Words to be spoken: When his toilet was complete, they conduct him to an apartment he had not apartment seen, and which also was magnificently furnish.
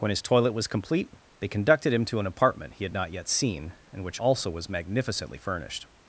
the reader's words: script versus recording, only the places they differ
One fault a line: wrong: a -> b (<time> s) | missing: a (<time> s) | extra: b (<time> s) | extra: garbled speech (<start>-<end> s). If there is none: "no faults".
wrong: conduct -> conducted (1.5 s)
wrong: apartment -> yet (3.1 s)
wrong: furnish -> furnished (5.4 s)